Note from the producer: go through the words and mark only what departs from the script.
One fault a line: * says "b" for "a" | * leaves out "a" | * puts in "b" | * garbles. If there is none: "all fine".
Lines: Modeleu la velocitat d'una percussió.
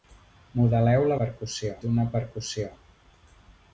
* says "percussió" for "velocitat"